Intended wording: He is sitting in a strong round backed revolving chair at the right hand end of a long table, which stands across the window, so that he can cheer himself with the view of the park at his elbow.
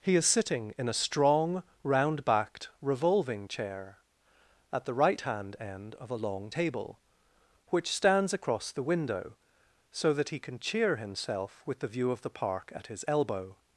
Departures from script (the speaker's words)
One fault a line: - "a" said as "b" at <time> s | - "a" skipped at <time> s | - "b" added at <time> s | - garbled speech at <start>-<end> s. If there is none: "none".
none